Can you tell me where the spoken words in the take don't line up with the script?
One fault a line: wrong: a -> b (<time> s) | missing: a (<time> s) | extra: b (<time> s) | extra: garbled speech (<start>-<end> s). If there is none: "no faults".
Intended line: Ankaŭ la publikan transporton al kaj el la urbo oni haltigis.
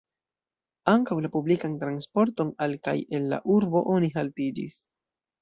no faults